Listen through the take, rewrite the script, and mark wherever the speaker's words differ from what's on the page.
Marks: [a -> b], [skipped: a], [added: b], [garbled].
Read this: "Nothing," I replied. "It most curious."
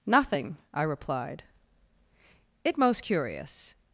"Nothing," I replied. "It most curious."